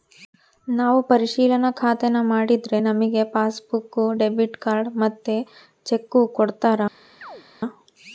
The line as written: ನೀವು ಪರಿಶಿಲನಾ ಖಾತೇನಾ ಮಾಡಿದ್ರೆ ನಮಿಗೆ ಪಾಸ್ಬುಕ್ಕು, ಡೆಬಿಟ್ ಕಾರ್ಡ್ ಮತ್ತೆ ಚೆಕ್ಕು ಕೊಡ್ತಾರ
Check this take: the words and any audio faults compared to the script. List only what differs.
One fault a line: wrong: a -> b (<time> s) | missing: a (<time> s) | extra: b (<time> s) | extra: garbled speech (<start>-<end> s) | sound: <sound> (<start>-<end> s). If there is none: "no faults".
wrong: ನೀವು -> ನಾವು (0.7 s)
sound: chirp (7.2-7.4 s)